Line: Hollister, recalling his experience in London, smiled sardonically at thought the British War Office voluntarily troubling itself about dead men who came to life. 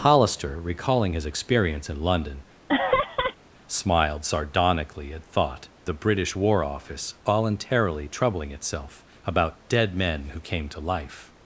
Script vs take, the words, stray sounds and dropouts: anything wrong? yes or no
yes